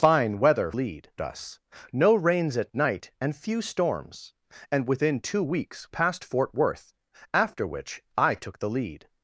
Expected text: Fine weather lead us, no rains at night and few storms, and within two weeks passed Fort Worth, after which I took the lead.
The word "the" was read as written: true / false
true